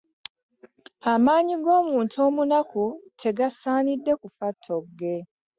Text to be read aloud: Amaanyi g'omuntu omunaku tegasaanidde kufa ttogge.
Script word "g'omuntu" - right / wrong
right